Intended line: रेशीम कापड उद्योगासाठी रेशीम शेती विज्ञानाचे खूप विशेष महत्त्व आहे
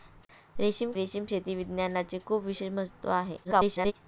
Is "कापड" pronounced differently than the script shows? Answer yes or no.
yes